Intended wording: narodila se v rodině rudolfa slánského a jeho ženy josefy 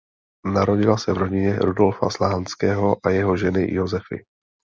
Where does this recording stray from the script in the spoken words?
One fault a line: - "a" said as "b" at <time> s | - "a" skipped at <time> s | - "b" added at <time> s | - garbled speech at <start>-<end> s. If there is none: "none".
none